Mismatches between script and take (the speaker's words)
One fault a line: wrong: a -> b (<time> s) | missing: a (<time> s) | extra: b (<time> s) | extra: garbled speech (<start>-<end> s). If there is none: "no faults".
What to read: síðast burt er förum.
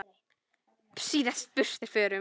no faults